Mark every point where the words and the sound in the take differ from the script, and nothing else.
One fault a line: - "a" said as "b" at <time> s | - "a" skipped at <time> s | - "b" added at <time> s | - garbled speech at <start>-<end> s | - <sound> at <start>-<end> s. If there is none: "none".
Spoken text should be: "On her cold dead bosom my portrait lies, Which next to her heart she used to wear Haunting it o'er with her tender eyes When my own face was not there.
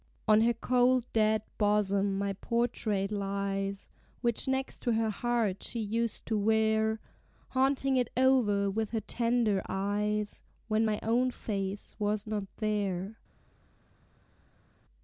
none